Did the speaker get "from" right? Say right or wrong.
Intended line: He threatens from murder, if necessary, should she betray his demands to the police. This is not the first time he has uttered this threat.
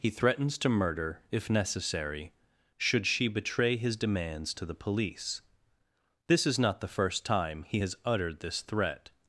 wrong